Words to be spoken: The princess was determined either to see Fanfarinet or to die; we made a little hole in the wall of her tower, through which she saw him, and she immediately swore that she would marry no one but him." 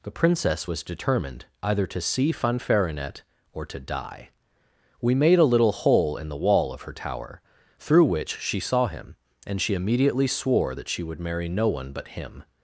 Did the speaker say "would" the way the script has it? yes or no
yes